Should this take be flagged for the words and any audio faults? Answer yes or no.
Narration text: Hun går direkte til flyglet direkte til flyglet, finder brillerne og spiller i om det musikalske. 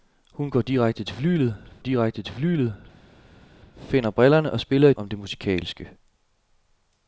no